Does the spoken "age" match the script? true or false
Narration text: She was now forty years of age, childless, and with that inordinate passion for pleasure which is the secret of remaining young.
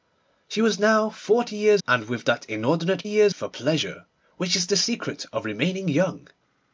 false